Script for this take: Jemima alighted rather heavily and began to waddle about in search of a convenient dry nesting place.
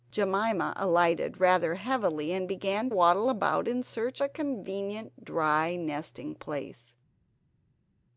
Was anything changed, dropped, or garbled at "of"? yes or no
yes